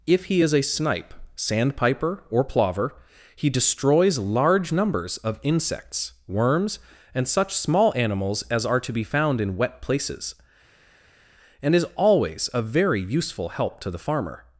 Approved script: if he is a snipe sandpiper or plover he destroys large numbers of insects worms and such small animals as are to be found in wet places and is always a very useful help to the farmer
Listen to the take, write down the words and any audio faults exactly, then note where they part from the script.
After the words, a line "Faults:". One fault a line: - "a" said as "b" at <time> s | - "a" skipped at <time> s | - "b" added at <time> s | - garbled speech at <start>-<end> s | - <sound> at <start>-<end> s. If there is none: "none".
if he is a snipe sandpiper or plover he destroys large numbers of insects worms and such small animals as are to be found in wet places and is always a very useful help to the farmer
Faults:
none